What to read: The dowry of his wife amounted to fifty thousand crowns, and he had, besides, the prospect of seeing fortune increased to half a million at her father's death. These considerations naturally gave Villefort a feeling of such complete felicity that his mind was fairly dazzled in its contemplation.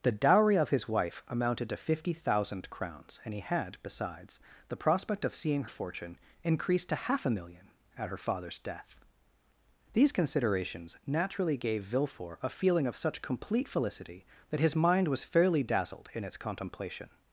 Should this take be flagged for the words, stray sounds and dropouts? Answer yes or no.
no